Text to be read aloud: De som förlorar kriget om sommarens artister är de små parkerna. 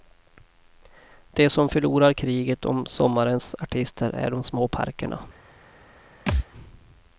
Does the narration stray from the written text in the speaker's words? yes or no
no